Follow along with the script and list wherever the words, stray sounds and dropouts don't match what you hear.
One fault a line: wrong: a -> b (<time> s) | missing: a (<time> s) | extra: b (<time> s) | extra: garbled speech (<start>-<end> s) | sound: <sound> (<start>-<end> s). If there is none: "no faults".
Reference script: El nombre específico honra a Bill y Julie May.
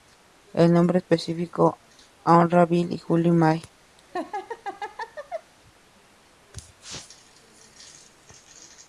sound: laugh (4.0-5.5 s)